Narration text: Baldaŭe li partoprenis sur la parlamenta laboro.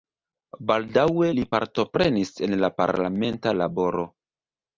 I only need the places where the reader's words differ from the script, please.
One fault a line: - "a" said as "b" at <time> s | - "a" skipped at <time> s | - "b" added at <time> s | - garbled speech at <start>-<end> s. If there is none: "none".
- "sur" said as "en" at 2.5 s